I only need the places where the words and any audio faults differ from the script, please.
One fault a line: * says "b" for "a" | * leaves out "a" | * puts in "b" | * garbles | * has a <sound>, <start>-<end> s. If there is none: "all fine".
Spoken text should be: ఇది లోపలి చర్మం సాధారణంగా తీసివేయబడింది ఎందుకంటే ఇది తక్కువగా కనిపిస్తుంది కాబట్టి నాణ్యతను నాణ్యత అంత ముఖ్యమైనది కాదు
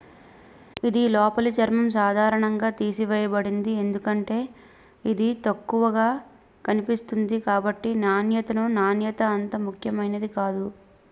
all fine